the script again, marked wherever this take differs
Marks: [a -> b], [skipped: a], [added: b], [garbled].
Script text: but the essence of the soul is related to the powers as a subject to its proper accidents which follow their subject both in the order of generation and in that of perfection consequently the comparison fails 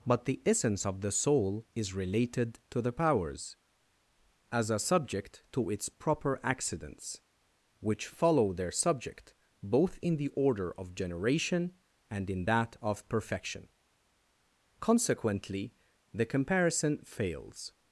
but the essence of the soul is related to the powers as a subject to its proper accidents which follow their subject both in the order of generation and in that of perfection consequently the comparison fails